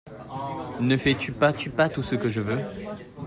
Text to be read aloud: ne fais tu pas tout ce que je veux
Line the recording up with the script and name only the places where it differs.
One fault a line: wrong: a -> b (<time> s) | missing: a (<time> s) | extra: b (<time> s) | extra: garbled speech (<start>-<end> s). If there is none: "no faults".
extra: tu pas (1.5 s)